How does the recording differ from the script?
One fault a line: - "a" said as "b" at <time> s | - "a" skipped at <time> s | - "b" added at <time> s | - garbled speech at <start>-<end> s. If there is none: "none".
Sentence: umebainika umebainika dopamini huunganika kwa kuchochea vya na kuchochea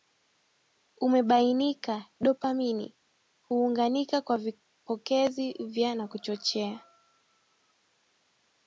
- "umebainika" skipped at 2.0 s
- "kuchochea" said as "vipokezi" at 4.4 s